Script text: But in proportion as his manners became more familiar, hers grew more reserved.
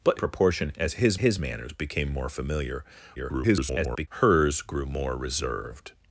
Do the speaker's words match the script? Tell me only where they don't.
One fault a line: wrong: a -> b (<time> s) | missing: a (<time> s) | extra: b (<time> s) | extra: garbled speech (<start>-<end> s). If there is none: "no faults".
missing: in (0.2 s)
extra: his (1.2 s)
extra: garbled speech (3.2-4.1 s)